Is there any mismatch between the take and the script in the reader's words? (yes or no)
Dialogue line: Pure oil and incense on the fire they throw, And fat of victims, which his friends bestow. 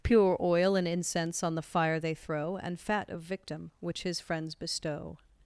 yes